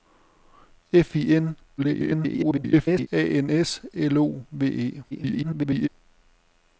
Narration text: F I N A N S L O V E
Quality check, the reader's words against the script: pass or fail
fail